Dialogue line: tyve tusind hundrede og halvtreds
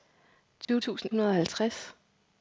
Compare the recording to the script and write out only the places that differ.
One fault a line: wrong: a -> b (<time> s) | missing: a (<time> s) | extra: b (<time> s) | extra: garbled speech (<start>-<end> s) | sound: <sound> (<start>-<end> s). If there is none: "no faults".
sound: dropout (0.6-0.7 s)